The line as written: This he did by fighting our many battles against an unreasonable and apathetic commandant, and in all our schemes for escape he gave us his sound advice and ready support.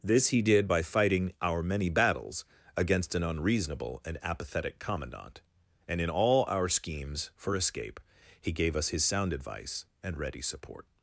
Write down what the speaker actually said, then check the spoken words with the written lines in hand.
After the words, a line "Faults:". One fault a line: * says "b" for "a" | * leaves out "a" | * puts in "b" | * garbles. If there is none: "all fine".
This he did by fighting our many battles against an unreasonable and apathetic commandant, and in all our schemes for escape he gave us his sound advice and ready support.
Faults:
all fine